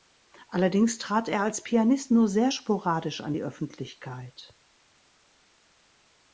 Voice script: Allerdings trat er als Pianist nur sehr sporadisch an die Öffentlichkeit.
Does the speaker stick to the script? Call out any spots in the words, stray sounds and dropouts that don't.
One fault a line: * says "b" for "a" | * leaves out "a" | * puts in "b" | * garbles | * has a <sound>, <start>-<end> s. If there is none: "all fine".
all fine